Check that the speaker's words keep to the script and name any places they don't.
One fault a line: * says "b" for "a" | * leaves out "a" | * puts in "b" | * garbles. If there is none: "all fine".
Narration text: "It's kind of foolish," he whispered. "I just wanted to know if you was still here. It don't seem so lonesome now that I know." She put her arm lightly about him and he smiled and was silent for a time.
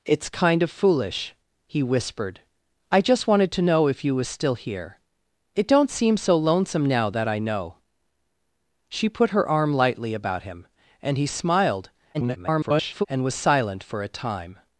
* garbles